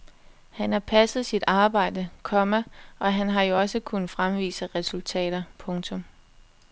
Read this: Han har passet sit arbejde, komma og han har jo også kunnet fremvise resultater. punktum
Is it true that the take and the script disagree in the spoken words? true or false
false